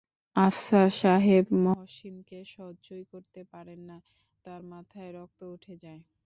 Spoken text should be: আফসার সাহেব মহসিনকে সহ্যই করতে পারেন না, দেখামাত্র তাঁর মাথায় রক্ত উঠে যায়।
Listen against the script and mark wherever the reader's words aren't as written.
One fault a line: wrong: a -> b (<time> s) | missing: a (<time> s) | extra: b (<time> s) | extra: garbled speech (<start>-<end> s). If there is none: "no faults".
missing: দেখামাত্র (4.0 s)